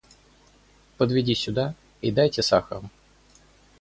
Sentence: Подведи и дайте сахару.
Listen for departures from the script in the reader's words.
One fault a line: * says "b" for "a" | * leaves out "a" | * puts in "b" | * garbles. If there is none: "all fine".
* puts in "сюда"